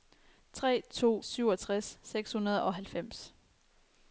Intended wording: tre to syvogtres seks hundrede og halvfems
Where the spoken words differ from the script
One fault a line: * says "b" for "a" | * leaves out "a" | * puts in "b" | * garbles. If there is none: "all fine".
all fine